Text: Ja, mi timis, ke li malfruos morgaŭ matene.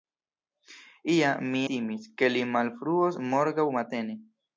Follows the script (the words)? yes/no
yes